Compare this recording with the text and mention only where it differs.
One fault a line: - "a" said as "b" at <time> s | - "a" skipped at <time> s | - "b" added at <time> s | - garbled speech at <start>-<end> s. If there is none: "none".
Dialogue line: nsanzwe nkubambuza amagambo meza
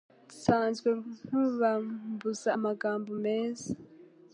none